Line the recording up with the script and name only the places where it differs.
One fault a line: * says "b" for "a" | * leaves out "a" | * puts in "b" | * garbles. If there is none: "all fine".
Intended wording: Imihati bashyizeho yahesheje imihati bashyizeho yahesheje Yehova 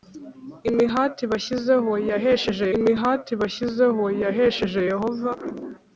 all fine